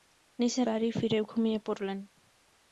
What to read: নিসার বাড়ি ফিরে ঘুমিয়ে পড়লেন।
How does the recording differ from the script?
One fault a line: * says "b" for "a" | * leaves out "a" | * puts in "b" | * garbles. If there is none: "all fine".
all fine